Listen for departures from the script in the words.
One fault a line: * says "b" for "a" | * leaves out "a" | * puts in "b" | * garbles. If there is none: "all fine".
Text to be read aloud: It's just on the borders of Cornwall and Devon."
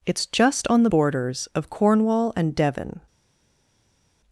all fine